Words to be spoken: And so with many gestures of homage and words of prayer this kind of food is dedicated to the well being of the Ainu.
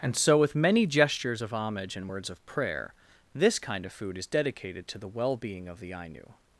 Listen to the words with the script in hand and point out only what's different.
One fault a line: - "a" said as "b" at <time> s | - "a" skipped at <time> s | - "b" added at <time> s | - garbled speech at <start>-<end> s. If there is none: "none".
none